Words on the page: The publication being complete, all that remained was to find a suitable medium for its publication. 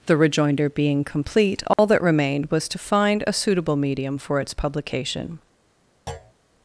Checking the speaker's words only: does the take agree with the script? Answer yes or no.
no